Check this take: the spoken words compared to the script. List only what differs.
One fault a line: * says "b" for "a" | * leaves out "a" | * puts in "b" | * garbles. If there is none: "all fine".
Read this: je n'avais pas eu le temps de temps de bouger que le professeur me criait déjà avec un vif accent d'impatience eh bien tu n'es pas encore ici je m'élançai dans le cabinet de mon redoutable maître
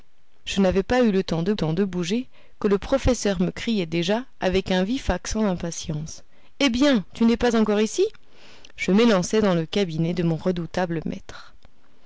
all fine